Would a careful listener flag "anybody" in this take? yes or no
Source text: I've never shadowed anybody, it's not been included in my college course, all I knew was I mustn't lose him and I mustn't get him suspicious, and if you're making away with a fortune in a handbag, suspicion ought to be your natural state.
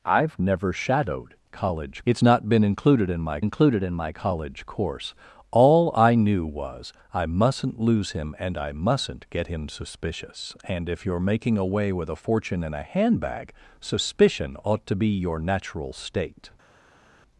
yes